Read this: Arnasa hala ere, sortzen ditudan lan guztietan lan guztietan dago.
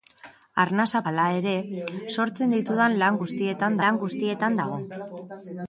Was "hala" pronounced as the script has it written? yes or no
yes